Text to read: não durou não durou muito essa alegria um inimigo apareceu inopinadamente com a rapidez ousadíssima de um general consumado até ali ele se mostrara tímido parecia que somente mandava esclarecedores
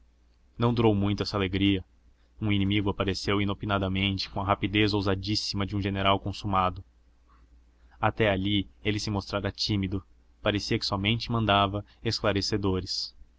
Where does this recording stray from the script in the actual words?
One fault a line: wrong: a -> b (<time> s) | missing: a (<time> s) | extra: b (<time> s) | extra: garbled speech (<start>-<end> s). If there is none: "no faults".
missing: não durou (0.9 s)